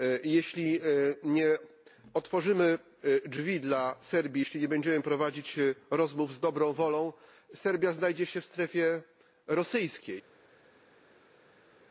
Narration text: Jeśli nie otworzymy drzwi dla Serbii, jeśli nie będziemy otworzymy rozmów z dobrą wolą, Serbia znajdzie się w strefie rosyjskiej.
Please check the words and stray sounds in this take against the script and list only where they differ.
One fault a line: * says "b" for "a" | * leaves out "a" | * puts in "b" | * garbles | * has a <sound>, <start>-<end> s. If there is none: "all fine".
* says "prowadzić" for "otworzymy"